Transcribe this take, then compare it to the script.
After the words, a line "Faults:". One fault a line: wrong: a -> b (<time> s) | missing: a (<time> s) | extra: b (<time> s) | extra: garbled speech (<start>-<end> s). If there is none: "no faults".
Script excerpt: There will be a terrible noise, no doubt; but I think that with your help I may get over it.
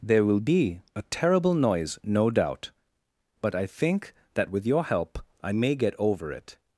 There will be a terrible noise, no doubt; but I think that with your help I may get over it.
Faults:
no faults